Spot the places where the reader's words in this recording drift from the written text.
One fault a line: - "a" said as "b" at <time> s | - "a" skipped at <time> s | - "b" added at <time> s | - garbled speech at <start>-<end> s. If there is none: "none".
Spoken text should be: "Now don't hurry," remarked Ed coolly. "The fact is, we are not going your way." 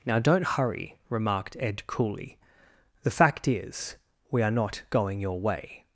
none